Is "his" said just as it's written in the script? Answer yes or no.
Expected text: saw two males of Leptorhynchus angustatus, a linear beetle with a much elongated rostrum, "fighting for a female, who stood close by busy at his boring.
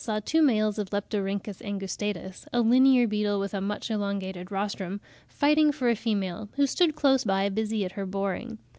no